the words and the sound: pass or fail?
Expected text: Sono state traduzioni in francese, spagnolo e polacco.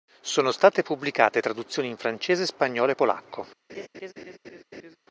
fail